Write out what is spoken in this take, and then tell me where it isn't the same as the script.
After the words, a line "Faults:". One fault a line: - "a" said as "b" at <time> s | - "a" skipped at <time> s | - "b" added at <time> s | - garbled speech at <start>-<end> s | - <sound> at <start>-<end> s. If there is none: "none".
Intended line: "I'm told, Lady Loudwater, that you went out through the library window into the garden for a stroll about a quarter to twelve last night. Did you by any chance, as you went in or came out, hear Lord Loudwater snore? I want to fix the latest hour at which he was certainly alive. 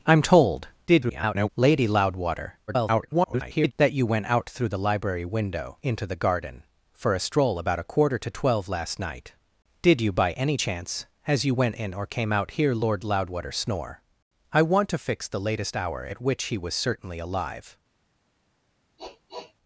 "I'm told, [garbled] Lady Loudwater, [garbled] that you went out through the library window into the garden for a stroll about a quarter to twelve last night. Did you by any chance, as you went in or came out, hear Lord Loudwater snore? I want to fix the latest hour at which he was certainly alive.
Faults:
- garbled speech at 0.9-1.5 s
- garbled speech at 2.7-3.7 s
- sniff at 19.0-19.5 s